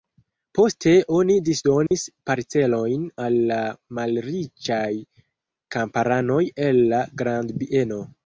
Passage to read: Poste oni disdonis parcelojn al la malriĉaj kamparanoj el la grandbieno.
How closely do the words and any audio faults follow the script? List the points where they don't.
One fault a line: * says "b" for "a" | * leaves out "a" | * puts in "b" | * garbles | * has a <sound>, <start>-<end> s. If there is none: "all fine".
* has a dropout, 1.9-1.9 s